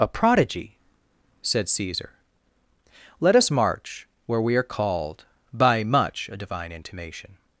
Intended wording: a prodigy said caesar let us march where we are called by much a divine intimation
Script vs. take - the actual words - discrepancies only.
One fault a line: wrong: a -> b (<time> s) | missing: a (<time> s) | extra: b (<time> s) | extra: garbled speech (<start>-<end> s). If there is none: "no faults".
no faults